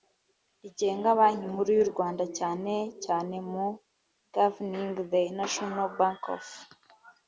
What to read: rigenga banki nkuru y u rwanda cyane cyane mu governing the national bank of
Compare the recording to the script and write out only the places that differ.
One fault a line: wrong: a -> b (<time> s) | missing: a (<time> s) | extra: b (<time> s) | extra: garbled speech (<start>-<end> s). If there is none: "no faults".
no faults